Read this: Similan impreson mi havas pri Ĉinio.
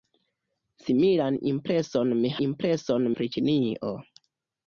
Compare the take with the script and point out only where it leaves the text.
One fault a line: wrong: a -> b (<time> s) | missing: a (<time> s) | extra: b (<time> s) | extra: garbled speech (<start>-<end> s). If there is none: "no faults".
wrong: havas -> impreson (2.5 s)